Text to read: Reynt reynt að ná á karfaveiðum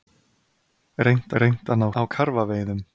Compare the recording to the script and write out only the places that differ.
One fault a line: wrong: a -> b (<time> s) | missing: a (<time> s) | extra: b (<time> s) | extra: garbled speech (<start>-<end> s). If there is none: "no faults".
no faults